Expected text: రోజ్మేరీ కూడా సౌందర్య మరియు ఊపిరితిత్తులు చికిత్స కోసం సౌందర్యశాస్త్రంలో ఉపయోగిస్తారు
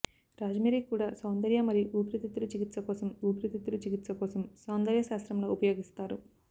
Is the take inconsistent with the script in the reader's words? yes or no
yes